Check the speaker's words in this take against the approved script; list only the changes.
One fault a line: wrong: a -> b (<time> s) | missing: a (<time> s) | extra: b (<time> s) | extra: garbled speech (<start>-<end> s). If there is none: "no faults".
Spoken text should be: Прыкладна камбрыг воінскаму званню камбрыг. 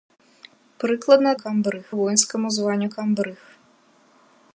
no faults